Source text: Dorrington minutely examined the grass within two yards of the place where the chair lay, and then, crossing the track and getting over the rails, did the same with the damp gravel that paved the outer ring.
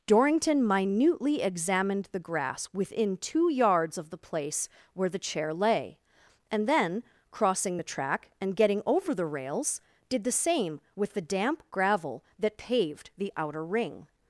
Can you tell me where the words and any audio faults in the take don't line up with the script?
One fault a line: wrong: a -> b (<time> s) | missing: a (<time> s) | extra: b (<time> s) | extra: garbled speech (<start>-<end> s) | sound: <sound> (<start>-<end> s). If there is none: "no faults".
no faults